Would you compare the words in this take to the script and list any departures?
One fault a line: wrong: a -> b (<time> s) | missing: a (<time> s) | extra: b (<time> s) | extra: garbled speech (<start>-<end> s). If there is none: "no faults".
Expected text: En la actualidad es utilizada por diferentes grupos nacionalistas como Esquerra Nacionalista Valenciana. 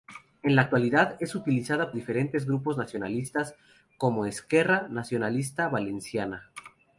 missing: por (1.9 s)